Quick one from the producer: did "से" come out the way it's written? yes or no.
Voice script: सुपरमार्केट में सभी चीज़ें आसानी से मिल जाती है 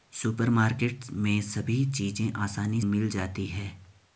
no